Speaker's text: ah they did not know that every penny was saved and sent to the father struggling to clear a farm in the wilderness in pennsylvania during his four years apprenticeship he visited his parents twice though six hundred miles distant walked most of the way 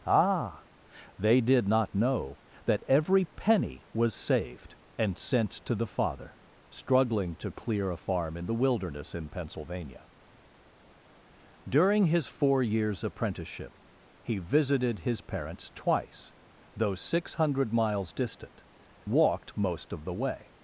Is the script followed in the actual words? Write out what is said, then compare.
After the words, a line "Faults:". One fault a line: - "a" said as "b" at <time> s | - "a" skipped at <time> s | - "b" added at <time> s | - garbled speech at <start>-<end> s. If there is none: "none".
ah they did not know that every penny was saved and sent to the father struggling to clear a farm in the wilderness in pennsylvania during his four years apprenticeship he visited his parents twice though six hundred miles distant walked most of the way
Faults:
none